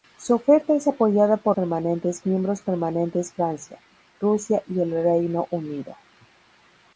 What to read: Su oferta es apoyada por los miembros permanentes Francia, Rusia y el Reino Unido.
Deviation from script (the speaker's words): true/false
true